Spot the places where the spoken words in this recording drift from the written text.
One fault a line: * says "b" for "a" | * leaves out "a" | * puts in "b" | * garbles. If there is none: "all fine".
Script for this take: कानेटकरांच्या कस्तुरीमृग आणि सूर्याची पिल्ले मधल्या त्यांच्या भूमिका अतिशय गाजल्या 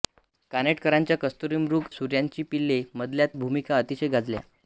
* leaves out "आणि"
* leaves out "त्यांच्या"